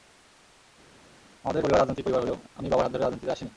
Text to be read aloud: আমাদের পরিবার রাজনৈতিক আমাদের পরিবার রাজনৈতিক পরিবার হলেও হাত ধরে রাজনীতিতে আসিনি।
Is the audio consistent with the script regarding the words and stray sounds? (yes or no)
no